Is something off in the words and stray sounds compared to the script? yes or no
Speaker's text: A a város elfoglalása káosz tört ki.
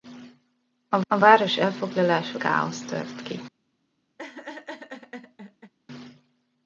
yes